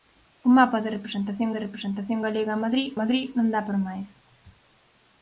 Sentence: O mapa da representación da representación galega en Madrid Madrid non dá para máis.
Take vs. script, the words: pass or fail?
pass